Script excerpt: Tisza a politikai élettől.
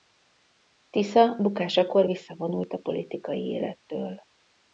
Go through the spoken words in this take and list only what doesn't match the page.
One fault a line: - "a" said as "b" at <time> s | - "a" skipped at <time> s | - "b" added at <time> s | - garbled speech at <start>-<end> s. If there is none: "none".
- "bukásakor visszavonult" added at 1.4 s